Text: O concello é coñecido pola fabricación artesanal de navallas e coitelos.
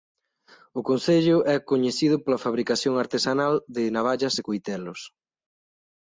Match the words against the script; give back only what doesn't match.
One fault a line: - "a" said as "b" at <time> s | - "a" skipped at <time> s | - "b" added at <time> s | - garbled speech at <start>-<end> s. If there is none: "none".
none